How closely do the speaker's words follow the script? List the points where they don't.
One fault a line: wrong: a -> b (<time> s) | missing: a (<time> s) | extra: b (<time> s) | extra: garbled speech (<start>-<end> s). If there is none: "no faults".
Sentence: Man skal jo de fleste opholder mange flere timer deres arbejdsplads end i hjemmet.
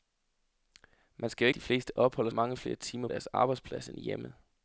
no faults